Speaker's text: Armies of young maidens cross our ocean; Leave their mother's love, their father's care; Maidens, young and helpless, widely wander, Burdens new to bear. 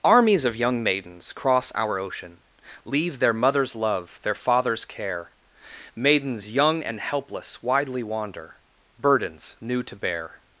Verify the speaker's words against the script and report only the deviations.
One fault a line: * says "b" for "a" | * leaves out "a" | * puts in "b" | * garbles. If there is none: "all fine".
all fine